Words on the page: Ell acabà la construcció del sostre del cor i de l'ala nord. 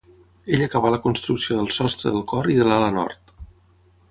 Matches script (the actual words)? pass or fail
pass